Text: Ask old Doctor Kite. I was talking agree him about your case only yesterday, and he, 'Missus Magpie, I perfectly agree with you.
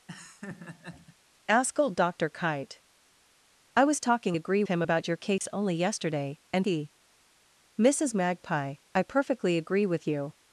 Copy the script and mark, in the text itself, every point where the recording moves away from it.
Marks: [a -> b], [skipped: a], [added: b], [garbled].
Ask old Doctor Kite. I was talking agree him about your case only yesterday, and he, 'Missus Magpie, I perfectly agree with you.